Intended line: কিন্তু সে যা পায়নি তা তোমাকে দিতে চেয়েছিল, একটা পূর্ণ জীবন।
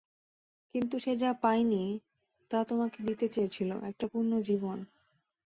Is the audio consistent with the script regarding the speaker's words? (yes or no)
yes